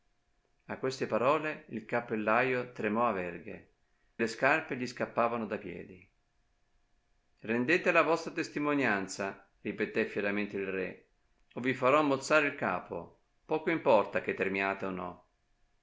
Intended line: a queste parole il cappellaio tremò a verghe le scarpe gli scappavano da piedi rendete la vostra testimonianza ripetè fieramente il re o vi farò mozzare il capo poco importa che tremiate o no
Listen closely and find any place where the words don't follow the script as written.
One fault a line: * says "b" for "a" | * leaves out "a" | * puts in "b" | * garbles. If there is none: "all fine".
all fine